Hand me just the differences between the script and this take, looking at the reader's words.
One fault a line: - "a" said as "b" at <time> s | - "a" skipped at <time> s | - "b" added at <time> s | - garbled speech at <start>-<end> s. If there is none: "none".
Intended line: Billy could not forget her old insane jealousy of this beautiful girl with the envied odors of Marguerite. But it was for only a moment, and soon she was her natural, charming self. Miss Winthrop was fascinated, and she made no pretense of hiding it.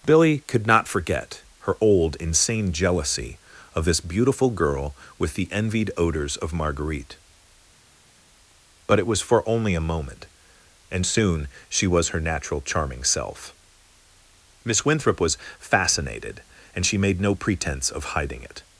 none